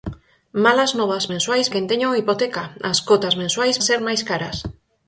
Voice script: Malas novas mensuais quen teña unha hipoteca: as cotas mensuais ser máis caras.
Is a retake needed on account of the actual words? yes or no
no